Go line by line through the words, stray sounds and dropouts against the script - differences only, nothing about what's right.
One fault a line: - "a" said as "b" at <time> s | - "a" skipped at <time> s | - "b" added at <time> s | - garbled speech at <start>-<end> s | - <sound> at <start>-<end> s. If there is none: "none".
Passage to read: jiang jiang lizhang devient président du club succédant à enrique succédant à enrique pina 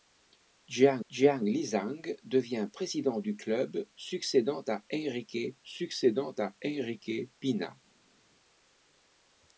none